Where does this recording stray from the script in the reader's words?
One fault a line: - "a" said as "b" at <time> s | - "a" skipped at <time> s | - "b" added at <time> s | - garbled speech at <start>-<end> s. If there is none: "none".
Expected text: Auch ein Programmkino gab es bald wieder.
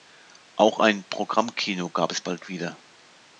none